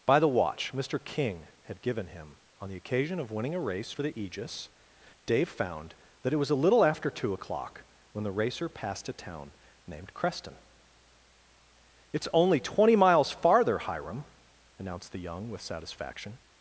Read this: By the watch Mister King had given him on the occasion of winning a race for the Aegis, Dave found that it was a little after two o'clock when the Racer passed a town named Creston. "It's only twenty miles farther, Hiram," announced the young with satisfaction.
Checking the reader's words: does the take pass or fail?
pass